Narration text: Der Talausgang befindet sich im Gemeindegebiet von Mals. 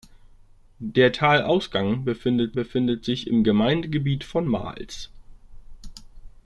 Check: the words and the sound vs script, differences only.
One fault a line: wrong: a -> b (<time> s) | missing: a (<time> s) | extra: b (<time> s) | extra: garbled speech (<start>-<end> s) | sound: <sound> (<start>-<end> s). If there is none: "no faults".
extra: befindet (2.5 s)